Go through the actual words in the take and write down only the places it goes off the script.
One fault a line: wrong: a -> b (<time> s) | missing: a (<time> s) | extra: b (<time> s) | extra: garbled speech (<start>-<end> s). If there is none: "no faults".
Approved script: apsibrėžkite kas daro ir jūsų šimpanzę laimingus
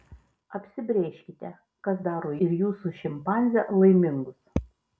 no faults